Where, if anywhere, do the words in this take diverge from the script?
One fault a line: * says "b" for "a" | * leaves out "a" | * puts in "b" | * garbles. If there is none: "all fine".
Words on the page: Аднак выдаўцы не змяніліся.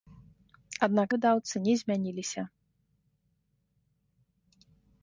all fine